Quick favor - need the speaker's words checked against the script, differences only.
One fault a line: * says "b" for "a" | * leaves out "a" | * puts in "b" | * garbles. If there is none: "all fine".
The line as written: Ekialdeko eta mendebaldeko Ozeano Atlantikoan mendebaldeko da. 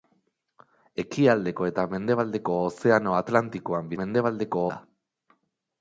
all fine